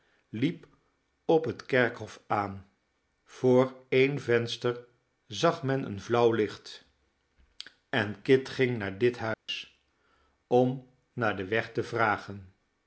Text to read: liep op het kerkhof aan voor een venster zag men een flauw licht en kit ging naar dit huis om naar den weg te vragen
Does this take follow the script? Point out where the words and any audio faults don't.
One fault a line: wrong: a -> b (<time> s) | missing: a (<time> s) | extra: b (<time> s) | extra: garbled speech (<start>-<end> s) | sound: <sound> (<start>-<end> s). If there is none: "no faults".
sound: dropout (9.3-9.5 s)